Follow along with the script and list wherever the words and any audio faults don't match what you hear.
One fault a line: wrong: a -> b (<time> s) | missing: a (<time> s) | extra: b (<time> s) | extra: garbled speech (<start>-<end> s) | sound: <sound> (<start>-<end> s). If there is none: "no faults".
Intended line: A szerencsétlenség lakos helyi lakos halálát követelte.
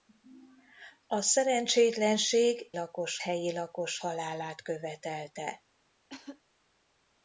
sound: cough (6.1-6.4 s)